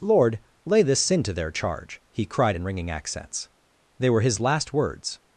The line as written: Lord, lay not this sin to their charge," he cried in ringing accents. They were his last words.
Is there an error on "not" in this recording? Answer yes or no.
yes